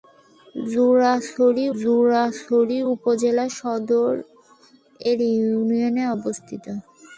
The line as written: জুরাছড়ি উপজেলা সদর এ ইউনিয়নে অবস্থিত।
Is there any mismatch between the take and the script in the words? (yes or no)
yes